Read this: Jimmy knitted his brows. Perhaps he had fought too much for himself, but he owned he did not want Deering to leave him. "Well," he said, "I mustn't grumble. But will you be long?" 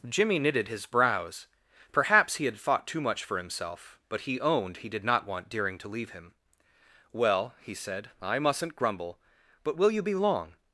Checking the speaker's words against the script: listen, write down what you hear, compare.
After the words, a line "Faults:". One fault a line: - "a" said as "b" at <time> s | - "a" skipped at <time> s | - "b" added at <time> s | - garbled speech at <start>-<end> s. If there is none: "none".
Jimmy knitted his brows. Perhaps he had fought too much for himself, but he owned he did not want Deering to leave him. "Well," he said, "I mustn't grumble. But will you be long?"
Faults:
none